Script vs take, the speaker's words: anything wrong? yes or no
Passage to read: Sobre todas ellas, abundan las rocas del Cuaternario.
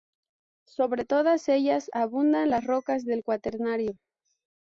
no